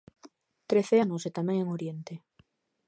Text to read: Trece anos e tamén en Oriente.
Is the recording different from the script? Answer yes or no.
no